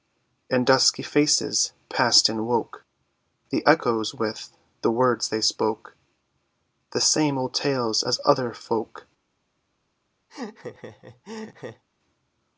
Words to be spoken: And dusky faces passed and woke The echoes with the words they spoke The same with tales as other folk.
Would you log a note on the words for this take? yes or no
yes